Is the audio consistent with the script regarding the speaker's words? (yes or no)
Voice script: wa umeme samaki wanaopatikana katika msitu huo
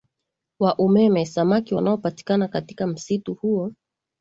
yes